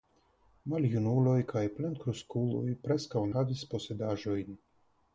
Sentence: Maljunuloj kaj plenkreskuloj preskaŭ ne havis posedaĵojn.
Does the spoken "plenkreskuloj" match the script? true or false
true